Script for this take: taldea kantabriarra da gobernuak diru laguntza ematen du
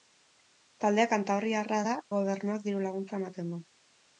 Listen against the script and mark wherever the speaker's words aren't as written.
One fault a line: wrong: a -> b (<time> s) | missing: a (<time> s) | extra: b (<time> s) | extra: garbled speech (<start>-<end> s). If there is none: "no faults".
no faults